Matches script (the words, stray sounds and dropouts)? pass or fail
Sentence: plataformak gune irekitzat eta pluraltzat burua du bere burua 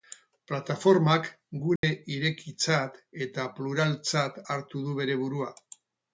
fail